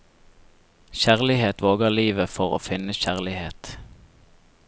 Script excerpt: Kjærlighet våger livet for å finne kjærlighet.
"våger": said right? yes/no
yes